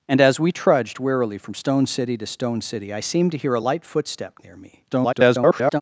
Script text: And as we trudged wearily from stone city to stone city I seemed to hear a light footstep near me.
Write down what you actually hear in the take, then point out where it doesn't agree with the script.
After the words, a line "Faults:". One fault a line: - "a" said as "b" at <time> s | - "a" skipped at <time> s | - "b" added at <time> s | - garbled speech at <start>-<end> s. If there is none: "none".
And as we trudged wearily from stone city to stone city I seemed to hear a light footstep near me. [garbled]
Faults:
- garbled speech at 4.9-5.8 s